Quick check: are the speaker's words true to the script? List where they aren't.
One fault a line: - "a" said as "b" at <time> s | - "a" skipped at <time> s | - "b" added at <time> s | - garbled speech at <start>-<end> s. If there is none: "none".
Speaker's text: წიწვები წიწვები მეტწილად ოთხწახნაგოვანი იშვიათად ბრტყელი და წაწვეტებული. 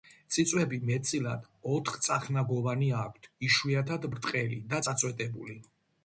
- "წიწვები" skipped at 0.8 s
- "აქვთ" added at 3.0 s